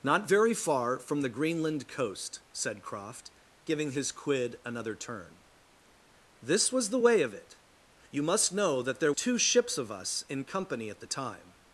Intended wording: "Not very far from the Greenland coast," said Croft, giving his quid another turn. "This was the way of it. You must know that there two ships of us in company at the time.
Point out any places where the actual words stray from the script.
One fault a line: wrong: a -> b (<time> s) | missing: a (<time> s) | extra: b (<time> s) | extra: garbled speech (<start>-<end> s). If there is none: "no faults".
no faults